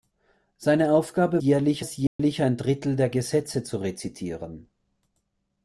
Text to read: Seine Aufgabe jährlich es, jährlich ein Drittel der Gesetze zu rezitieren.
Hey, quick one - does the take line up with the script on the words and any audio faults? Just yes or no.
no